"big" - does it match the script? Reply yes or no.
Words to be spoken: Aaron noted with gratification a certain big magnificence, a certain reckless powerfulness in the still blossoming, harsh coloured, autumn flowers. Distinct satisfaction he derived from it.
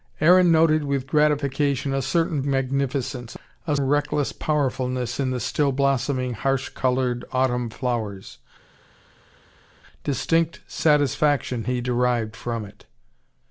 no